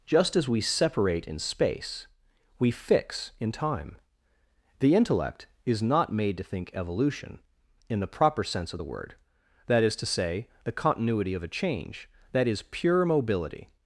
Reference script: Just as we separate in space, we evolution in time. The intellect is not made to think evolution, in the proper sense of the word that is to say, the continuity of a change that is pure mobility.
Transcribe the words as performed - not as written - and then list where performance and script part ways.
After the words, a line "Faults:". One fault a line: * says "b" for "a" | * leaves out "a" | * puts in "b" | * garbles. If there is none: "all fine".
Just as we separate in space, we fix in time. The intellect is not made to think evolution, in the proper sense of the word that is to say, the continuity of a change that is pure mobility.
Faults:
* says "fix" for "evolution"